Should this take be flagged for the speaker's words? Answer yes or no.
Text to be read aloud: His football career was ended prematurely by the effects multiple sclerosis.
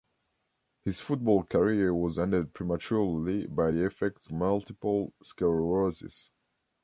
no